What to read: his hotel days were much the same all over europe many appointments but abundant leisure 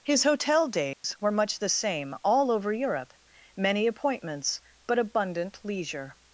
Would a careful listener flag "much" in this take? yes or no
no